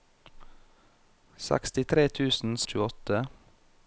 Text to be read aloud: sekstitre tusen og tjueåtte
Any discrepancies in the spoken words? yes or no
no